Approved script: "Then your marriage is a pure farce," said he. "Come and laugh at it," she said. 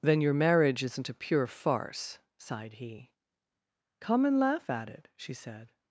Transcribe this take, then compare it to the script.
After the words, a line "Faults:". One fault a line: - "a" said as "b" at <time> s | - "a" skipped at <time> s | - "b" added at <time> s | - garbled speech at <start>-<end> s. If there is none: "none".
"Then your marriage isn't a pure farce," sighed he. "Come and laugh at it," she said.
Faults:
- "is" said as "isn't" at 0.8 s
- "said" said as "sighed" at 2.4 s